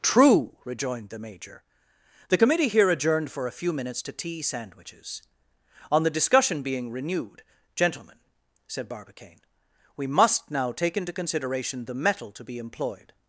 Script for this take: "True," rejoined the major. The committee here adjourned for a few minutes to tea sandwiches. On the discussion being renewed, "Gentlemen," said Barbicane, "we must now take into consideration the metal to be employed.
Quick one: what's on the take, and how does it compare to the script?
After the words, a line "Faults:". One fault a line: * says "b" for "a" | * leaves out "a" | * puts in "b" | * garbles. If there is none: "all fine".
"True," rejoined the major. The committee here adjourned for a few minutes to tea sandwiches. On the discussion being renewed, "Gentlemen," said Barbicane, "we must now take into consideration the metal to be employed.
Faults:
all fine